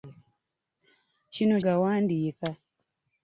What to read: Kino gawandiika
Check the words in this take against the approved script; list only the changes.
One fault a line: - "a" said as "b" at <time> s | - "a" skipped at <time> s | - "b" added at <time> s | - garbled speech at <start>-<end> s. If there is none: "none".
none